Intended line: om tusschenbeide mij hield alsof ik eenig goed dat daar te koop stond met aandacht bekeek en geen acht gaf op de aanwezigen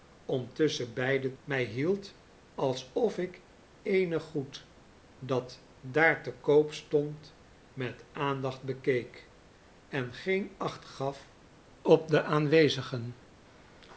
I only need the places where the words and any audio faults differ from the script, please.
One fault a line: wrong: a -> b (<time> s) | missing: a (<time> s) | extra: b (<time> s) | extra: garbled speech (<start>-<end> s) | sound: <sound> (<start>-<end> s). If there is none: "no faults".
no faults